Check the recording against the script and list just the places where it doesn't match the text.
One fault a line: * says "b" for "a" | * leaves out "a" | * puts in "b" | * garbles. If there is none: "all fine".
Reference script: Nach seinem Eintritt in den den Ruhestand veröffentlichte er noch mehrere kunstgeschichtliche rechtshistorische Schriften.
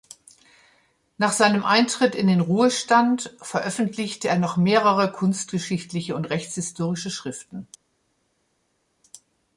* leaves out "den"
* puts in "und"